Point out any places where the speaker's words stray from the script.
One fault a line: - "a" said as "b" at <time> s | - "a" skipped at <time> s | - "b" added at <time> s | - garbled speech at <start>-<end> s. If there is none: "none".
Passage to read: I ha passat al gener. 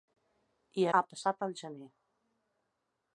none